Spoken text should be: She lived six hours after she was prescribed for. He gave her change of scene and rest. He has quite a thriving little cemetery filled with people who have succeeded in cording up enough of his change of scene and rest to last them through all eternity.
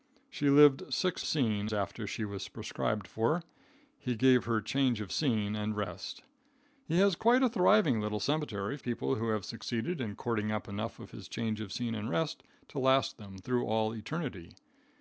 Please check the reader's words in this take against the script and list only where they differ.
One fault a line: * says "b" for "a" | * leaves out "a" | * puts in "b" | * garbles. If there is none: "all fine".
* says "scene" for "hours"
* leaves out "filled with"